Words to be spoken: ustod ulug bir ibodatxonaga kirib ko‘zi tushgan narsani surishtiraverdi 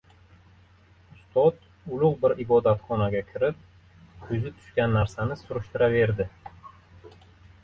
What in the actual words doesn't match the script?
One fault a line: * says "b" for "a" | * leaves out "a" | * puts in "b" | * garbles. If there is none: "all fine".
all fine